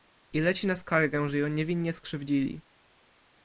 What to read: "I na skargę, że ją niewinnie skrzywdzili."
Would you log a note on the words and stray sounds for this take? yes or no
yes